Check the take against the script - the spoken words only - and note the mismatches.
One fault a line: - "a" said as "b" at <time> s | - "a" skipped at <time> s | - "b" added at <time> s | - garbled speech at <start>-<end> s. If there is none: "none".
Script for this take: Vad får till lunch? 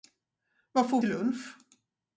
none